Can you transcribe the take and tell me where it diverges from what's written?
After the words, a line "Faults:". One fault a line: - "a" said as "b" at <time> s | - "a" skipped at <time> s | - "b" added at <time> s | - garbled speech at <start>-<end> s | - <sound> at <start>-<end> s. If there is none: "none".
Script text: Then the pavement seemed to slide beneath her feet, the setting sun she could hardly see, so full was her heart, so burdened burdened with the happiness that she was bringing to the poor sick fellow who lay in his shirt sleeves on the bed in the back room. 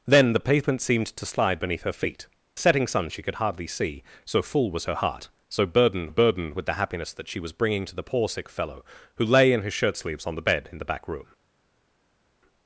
Then the pavement seemed to slide beneath her feet, the setting sun she could hardly see, so full was her heart, so burdened burdened with the happiness that she was bringing to the poor sick fellow who lay in his shirt sleeves on the bed in the back room.
Faults:
none